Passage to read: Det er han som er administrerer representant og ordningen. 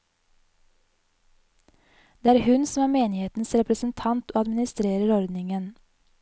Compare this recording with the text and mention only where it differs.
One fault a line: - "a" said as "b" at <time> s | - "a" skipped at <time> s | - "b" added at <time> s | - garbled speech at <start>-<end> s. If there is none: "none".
- "han" said as "hun" at 2.4 s
- "administrerer" said as "menighetens" at 2.9 s
- "administrerer" added at 4.4 s